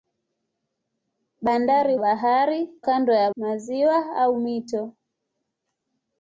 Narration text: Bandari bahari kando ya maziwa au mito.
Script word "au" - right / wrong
right